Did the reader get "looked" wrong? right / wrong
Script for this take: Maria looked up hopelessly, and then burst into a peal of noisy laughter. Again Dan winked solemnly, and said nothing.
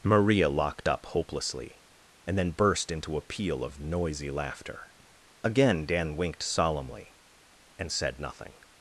wrong